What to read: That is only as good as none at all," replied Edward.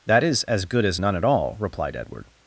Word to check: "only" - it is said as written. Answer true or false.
false